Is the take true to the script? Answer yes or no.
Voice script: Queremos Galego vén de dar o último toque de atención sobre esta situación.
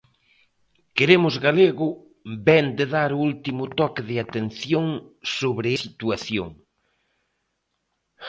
no